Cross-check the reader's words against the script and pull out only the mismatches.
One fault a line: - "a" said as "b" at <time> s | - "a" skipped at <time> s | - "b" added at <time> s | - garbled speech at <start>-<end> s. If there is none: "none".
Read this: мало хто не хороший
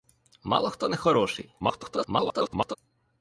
- garbled speech at 1.6-2.8 s